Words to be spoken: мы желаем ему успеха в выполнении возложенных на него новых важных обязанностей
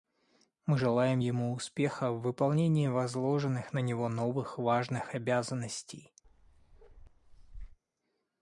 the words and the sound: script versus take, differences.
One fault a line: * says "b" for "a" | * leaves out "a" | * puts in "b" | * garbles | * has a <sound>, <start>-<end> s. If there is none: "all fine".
* has a bark, 6.2-7.8 s